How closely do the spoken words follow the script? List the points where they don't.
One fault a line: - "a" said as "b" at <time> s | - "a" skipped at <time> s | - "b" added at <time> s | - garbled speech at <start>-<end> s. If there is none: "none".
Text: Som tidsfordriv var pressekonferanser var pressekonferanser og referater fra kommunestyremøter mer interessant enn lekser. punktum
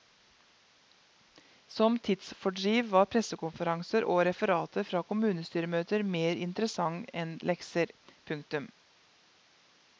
- "var pressekonferanser" skipped at 4.1 s